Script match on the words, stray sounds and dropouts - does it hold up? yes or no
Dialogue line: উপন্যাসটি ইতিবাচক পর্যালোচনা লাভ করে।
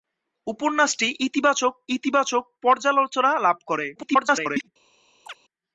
no